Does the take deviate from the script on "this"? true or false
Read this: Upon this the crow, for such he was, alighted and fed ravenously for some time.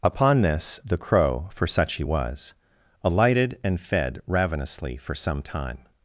false